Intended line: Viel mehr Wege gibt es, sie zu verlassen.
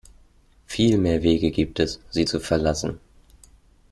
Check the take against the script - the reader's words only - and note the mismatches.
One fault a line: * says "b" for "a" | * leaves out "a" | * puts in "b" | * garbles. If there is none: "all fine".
all fine